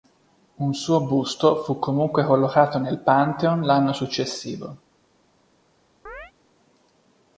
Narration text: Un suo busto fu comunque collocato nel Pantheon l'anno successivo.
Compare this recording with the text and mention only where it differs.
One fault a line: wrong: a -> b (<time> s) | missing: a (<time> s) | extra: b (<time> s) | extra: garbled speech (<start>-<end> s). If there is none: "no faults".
no faults